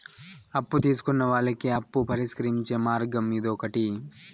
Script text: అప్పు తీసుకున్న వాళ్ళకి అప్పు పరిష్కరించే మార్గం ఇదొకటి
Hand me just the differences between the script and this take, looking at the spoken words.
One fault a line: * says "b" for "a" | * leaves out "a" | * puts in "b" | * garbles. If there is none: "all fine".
all fine